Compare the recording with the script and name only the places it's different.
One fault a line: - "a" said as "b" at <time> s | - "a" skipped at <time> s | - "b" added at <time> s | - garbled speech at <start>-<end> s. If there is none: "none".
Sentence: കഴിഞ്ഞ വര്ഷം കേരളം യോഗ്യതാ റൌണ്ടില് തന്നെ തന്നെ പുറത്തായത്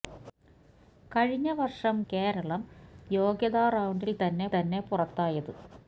none